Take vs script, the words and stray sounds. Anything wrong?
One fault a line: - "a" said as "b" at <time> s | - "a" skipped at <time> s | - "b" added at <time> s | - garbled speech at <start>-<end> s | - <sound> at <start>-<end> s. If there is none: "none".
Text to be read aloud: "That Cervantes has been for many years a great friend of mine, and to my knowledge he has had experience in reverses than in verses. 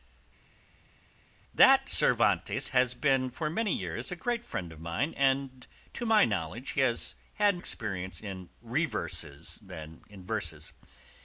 none